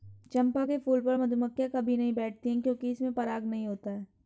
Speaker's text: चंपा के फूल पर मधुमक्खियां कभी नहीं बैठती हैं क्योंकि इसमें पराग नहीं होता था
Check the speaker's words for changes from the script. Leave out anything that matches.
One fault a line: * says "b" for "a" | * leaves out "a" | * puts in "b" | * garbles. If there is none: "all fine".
* says "है" for "था"